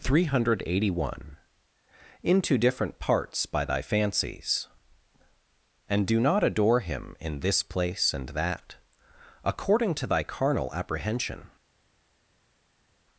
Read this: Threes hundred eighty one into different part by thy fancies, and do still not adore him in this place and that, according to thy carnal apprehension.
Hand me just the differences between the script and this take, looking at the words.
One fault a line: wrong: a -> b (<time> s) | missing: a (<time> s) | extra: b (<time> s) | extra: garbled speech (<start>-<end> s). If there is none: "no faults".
wrong: Threes -> Three (0.0 s)
wrong: part -> parts (3.0 s)
missing: still (6.2 s)